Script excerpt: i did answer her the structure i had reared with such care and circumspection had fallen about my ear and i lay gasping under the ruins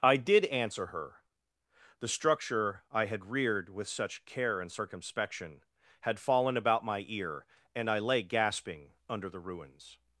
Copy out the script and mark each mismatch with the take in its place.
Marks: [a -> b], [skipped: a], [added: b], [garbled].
i did answer her the structure i had reared with such care and circumspection had fallen about my ear and i lay gasping under the ruins